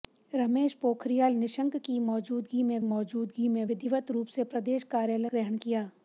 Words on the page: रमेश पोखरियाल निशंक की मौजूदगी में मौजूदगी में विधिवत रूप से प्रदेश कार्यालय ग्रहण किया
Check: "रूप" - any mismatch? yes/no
no